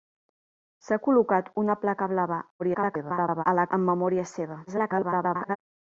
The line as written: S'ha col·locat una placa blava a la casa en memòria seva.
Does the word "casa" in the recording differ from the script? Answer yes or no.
yes